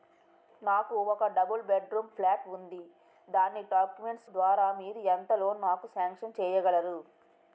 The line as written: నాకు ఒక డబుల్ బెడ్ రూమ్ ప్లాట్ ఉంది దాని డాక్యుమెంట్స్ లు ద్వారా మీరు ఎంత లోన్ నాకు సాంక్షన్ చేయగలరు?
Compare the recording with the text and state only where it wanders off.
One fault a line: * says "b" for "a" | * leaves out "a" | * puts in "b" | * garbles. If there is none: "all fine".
* leaves out "లు"